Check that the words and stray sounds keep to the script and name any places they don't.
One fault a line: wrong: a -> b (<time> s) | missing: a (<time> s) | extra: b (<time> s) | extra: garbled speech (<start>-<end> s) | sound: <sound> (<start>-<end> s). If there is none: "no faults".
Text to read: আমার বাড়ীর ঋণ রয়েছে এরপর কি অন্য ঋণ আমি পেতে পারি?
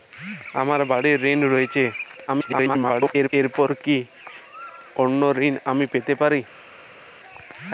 extra: garbled speech (2.3-3.3 s)